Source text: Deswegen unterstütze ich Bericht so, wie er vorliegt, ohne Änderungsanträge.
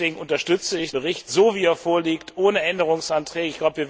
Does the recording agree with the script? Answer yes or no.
yes